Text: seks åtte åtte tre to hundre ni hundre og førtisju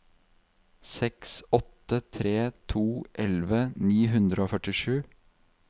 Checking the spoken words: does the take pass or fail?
fail